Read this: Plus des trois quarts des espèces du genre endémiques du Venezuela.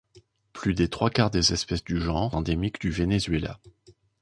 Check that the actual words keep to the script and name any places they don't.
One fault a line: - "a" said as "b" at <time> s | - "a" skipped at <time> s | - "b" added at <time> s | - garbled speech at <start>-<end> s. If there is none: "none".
none